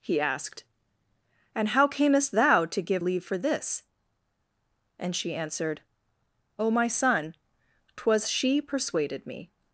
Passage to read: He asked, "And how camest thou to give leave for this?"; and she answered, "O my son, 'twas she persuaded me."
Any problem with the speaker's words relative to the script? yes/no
no